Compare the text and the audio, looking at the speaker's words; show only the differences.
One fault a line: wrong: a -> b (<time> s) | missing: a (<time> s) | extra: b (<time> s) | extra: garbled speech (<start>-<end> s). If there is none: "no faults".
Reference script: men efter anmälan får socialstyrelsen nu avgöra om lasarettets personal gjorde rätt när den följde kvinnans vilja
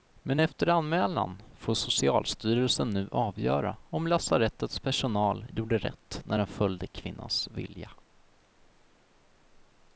no faults